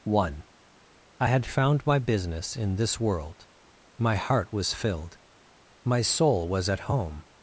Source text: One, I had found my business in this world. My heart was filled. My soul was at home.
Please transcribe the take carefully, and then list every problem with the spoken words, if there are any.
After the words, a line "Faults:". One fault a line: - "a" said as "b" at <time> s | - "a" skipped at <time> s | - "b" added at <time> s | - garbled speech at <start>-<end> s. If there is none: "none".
One, I had found my business in this world. My heart was filled. My soul was at home.
Faults:
none